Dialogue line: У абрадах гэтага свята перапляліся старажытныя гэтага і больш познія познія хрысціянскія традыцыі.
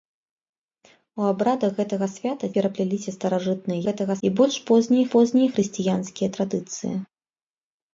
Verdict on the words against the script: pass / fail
pass